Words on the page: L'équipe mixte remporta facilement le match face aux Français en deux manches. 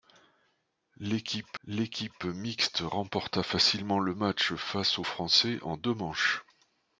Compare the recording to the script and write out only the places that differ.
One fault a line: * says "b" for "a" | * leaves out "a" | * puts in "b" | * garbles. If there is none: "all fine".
* puts in "l'équipe"